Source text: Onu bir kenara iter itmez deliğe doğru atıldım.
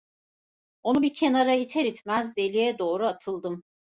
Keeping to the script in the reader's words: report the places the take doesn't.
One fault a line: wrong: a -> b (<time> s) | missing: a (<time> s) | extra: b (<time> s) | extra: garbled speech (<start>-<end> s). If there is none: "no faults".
no faults